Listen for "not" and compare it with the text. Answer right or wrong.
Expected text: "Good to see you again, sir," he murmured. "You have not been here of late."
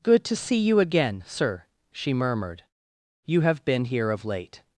wrong